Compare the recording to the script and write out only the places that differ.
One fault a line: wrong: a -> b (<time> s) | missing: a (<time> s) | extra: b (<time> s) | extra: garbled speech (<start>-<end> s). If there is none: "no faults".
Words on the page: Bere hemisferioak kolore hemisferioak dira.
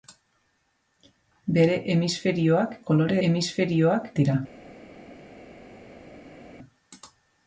no faults